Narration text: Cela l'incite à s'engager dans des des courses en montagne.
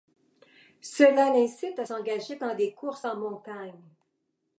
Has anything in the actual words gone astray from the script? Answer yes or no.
yes